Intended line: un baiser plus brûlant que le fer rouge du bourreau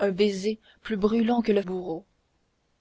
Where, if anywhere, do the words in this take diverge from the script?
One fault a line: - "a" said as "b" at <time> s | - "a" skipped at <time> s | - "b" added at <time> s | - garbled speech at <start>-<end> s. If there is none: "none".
- "fer rouge du" skipped at 1.6 s